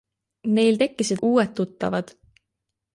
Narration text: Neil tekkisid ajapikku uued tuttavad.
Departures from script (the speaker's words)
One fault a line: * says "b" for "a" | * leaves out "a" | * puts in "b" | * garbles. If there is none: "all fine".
* leaves out "ajapikku"